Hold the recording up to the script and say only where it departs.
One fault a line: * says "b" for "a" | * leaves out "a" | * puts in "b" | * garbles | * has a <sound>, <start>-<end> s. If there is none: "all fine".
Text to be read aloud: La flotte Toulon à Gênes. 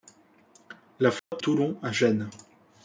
* has a dropout, 1.2-1.3 s